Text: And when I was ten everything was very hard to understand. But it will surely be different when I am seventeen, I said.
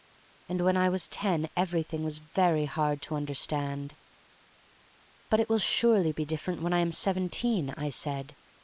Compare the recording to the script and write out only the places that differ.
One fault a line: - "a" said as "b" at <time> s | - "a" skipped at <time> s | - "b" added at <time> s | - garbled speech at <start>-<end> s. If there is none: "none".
none